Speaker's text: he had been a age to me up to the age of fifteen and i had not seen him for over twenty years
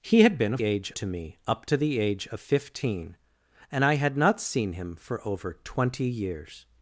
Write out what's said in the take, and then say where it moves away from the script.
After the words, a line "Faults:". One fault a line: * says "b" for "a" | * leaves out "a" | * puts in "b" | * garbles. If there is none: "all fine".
he had been a age to me up to the age of fifteen and i had not seen him for over twenty years
Faults:
all fine